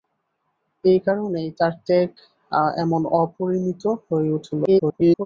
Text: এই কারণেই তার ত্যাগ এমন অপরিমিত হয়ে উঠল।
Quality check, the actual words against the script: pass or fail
fail